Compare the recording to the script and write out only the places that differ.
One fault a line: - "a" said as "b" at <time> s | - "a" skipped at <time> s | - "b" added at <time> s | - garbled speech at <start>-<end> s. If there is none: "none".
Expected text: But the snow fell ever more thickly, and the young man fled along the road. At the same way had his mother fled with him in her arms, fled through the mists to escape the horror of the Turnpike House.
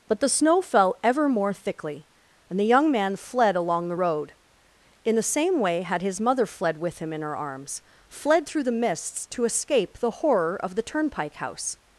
- "At" said as "In" at 5.0 s